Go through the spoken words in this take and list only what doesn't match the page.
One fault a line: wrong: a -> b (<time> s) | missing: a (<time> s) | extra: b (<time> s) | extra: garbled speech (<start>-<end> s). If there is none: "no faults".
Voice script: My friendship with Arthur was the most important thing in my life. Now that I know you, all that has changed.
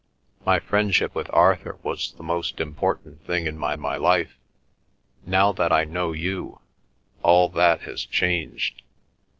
extra: my (3.8 s)